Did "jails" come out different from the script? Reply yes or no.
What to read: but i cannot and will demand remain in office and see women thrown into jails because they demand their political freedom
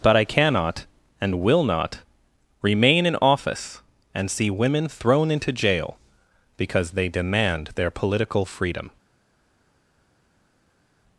yes